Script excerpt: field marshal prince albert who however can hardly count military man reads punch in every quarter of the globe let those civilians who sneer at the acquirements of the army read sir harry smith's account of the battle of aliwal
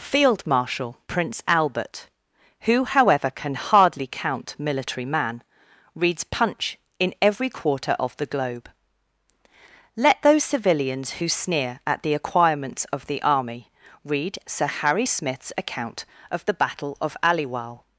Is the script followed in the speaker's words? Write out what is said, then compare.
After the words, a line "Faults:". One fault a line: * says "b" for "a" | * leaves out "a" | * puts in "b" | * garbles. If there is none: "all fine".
field marshal prince albert who however can hardly count military man reads punch in every quarter of the globe let those civilians who sneer at the acquirements of the army read sir harry smith's account of the battle of aliwal
Faults:
all fine